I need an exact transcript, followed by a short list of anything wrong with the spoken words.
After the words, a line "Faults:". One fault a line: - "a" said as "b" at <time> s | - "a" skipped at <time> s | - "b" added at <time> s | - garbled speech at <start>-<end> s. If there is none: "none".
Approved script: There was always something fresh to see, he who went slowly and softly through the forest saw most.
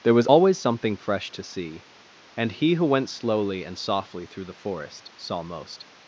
There was always something fresh to see, and he who went slowly and softly through the forest saw most.
Faults:
- "and" added at 2.4 s